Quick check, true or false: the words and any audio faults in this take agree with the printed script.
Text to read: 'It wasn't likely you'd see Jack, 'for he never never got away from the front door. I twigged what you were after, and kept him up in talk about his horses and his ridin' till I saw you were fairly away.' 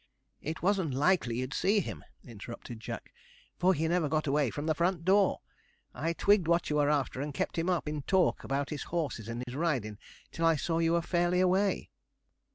false